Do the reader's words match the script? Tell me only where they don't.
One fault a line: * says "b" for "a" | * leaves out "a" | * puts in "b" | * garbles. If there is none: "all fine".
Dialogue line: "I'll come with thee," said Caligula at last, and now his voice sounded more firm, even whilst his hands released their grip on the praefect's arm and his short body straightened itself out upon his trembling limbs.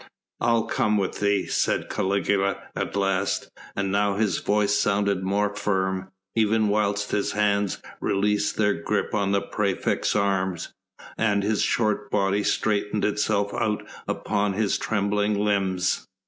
all fine